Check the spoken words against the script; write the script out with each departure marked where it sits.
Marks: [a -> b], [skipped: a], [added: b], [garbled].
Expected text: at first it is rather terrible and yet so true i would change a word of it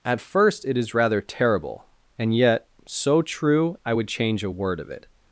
at first it is rather terrible and yet so true i would change a word of it